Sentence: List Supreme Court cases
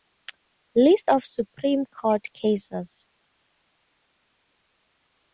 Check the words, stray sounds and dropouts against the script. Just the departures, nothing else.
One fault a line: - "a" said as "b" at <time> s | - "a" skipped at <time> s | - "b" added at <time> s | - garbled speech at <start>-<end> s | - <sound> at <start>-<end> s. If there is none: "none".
- "of" added at 1.1 s